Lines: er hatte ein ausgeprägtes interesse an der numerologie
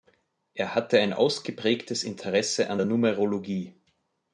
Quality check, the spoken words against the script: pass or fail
pass